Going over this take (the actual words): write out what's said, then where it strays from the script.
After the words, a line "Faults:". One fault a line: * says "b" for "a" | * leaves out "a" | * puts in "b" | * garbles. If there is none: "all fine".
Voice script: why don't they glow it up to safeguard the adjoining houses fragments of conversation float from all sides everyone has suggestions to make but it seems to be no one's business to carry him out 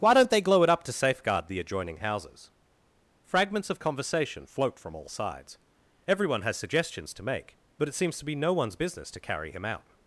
why don't they glow it up to safeguard the adjoining houses fragments of conversation float from all sides everyone has suggestions to make but it seems to be no one's business to carry him out
Faults:
all fine